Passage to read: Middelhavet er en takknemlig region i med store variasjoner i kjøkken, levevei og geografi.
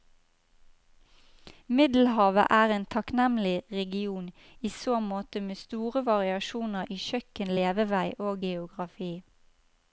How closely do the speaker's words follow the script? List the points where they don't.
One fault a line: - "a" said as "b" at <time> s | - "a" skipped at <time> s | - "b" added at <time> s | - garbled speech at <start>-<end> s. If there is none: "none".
- "så måte" added at 4.7 s